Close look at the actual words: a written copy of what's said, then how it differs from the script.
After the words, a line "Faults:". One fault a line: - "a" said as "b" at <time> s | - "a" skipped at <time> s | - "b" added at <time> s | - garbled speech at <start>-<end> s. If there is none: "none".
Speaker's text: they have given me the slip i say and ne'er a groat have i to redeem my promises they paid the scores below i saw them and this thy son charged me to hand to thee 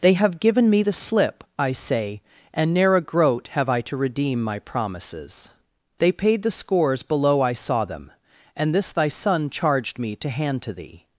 they have given me the slip i say and ne'er a groat have i to redeem my promises they paid the scores below i saw them and this thy son charged me to hand to thee
Faults:
none